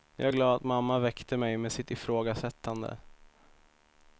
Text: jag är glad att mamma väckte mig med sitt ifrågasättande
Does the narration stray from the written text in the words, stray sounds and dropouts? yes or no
no